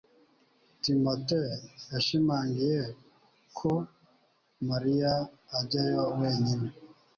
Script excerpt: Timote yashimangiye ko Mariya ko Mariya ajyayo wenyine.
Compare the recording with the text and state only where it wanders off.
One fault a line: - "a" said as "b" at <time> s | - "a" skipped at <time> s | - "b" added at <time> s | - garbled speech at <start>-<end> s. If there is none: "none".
- "ko Mariya" skipped at 5.1 s